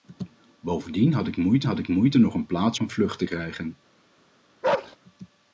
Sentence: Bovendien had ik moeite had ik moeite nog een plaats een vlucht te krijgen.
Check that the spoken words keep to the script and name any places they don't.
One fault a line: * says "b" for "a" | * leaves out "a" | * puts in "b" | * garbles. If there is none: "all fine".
all fine